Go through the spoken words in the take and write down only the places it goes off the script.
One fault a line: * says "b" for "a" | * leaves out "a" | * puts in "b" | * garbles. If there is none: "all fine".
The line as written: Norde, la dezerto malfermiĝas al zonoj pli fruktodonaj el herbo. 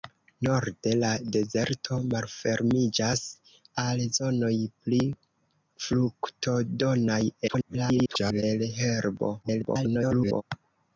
* garbles
* garbles